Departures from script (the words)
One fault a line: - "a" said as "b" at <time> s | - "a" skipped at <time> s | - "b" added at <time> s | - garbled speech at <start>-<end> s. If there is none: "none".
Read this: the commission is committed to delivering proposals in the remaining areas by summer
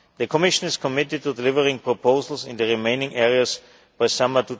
none